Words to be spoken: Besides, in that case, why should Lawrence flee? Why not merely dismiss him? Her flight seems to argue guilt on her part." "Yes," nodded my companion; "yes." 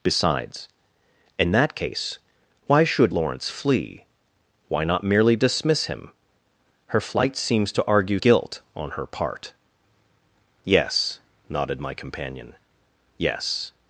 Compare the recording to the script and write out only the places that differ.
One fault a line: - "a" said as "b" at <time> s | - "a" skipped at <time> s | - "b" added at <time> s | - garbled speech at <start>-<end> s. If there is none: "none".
none